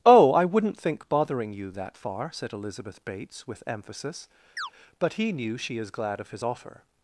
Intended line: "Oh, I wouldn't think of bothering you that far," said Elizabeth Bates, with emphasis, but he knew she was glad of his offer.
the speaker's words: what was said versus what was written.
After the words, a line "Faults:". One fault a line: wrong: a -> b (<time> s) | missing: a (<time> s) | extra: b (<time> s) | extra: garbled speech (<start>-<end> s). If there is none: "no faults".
"Oh, I wouldn't think bothering you that far," said Elizabeth Bates, with emphasis, but he knew she is glad of his offer.
Faults:
missing: of (1.1 s)
wrong: was -> is (5.8 s)